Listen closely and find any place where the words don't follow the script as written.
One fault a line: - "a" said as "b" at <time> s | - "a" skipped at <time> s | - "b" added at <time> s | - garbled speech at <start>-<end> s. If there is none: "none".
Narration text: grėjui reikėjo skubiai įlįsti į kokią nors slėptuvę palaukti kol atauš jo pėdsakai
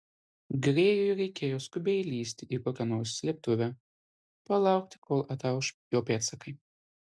none